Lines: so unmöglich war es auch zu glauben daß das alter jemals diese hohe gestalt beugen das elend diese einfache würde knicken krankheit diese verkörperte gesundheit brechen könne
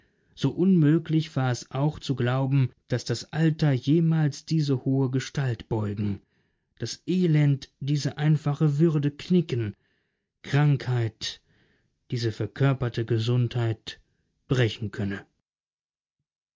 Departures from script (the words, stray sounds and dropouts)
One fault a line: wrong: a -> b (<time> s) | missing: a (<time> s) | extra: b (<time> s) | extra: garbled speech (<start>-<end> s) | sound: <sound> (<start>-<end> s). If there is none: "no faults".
no faults